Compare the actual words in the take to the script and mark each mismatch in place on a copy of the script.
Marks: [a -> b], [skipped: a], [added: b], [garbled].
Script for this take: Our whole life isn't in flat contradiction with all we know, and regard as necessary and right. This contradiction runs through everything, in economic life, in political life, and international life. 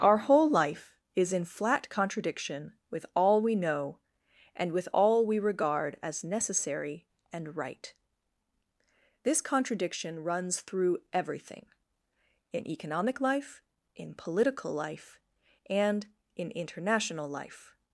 Our whole life [isn't -> is] in flat contradiction with all we know, and [added: with all we] regard as necessary and right. This contradiction runs through everything, in economic life, in political life, and [added: in] international life.